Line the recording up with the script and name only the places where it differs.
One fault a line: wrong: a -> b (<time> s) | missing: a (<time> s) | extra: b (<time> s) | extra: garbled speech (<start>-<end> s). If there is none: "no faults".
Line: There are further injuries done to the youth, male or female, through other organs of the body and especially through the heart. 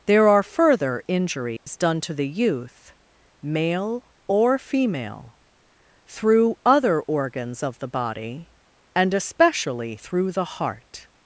no faults